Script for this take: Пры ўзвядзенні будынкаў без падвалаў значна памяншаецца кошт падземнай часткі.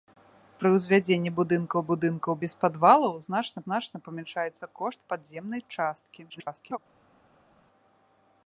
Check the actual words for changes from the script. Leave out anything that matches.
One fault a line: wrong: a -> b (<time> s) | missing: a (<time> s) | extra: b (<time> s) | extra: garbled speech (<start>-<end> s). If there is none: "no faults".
extra: будынкаў (1.9 s)
extra: значна (3.7 s)
extra: garbled speech (6.3-6.8 s)